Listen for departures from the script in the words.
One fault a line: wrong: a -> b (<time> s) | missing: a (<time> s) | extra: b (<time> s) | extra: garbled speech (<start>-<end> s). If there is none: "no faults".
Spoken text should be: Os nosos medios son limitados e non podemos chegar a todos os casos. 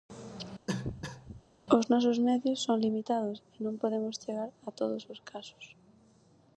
no faults